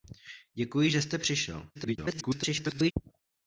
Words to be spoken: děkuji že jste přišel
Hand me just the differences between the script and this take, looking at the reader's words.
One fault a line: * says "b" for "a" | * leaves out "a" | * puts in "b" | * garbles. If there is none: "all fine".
* garbles